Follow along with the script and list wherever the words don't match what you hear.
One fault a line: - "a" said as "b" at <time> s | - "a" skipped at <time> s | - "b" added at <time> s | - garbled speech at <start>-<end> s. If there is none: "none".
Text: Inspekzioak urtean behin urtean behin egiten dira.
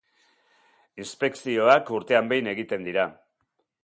- "urtean behin" skipped at 2.5 s